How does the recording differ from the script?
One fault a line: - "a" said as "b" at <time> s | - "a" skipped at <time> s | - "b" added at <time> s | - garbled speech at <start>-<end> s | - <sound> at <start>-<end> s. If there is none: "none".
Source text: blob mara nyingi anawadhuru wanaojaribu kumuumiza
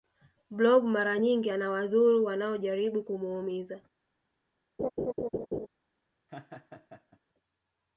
- laugh at 4.8-5.7 s
- laugh at 6.3-7.2 s